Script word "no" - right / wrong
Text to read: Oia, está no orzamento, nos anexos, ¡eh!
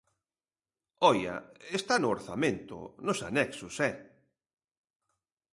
right